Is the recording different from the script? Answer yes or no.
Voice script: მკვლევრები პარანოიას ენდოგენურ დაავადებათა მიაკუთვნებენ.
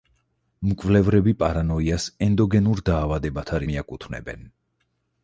no